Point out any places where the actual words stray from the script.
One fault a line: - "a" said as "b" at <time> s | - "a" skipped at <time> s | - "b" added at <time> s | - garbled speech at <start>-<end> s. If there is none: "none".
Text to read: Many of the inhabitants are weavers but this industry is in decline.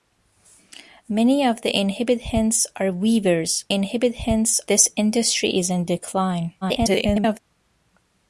- "but" said as "inhabitants" at 3.7 s
- garbled speech at 6.6-7.4 s